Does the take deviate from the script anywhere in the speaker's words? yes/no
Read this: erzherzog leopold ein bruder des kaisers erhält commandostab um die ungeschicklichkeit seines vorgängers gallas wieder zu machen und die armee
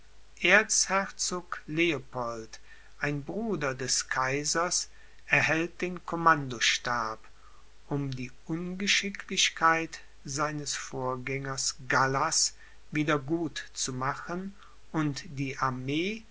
yes